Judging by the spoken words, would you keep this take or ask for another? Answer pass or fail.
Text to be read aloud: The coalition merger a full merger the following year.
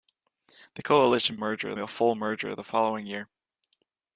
pass